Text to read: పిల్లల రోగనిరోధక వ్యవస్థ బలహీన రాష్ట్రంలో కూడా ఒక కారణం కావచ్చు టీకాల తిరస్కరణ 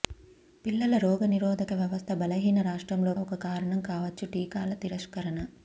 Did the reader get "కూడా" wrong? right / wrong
wrong